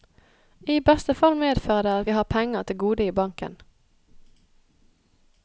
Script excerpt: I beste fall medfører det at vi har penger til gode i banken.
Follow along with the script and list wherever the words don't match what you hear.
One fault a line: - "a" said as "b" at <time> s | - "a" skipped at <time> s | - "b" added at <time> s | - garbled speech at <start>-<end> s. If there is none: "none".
none